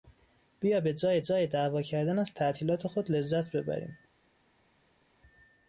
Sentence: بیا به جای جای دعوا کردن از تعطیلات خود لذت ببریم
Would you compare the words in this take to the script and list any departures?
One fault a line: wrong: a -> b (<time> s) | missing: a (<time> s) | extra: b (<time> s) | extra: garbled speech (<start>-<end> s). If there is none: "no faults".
no faults